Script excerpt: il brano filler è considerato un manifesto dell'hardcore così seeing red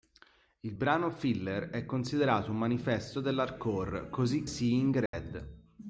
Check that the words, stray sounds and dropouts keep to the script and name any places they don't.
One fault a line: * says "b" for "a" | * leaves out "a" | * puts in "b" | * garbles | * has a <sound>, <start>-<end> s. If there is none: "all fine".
* has a dropout, 5.1-5.1 s